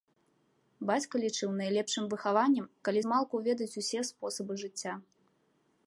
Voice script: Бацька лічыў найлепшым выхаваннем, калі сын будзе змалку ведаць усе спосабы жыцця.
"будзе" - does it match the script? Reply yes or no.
no